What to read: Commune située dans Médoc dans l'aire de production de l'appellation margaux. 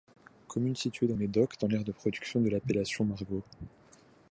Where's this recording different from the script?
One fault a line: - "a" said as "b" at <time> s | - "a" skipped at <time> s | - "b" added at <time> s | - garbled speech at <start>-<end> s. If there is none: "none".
none